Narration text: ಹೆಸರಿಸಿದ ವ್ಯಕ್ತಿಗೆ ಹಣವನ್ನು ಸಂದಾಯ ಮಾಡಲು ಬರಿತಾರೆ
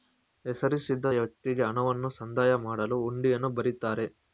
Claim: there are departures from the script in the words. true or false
true